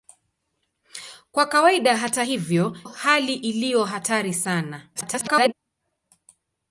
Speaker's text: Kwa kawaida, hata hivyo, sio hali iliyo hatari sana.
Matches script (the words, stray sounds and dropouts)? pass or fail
fail